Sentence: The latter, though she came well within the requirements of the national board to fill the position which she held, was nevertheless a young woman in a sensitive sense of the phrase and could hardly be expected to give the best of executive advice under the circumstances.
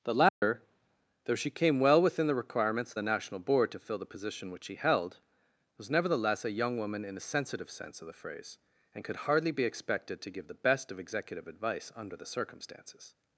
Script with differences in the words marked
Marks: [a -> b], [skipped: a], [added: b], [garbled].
The latter, though she came well within the requirements of the national board to fill the position which she held, was nevertheless a young woman in a sensitive sense of the phrase and could hardly be expected to give the best of executive advice under the circumstances.